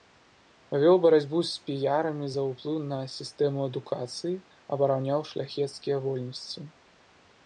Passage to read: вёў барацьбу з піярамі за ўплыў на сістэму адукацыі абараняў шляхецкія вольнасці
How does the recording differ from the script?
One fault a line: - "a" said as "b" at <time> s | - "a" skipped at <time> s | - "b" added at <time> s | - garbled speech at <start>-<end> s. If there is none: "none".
none